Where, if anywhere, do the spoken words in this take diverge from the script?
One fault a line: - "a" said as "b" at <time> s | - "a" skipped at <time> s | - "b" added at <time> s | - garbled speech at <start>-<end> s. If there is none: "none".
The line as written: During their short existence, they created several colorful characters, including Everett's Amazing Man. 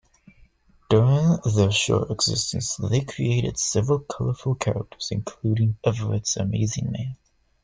none